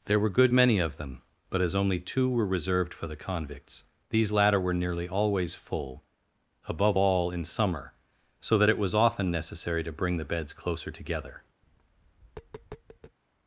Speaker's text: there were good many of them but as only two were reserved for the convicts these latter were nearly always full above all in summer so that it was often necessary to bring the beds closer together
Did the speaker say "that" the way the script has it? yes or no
yes